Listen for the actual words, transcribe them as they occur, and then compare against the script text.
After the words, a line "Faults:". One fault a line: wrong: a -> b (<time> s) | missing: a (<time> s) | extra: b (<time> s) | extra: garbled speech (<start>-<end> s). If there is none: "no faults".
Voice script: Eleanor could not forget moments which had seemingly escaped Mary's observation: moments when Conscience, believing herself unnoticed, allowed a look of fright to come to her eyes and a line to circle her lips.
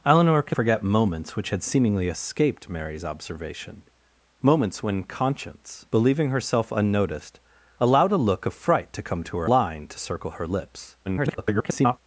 Eleanor could forget moments which had seemingly escaped Mary's observation: moments when Conscience, believing herself unnoticed, allowed a look of fright to come to her line to circle her lips. [garbled]
Faults:
missing: not (0.6 s)
missing: eyes and a (9.5 s)
extra: garbled speech (11.0-12.0 s)